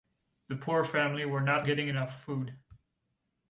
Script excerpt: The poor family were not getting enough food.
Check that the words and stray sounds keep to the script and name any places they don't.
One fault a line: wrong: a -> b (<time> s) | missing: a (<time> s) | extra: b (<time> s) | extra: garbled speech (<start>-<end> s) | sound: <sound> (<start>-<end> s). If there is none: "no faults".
no faults